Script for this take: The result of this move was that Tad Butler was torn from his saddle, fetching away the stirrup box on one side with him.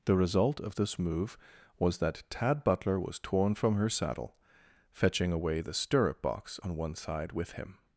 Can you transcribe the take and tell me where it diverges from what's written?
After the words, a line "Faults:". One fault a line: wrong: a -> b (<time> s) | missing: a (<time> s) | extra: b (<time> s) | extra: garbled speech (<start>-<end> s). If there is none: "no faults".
The result of this move was that Tad Butler was torn from her saddle, fetching away the stirrup box on one side with him.
Faults:
wrong: his -> her (3.8 s)